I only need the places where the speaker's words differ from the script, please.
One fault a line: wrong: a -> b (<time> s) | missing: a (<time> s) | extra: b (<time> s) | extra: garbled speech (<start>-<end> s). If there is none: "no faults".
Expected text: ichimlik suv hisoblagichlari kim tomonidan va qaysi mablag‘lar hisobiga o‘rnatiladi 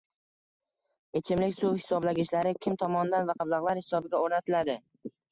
missing: qaysi (3.4 s)